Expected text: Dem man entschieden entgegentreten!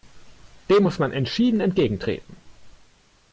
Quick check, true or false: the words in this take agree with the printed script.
false